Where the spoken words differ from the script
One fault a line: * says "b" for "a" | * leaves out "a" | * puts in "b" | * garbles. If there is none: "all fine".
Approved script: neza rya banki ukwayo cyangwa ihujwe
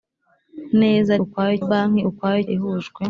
* says "ukwayo" for "rya"
* leaves out "cyangwa"